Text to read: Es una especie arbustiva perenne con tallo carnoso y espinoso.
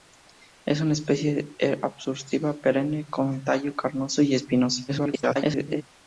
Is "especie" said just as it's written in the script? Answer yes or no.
yes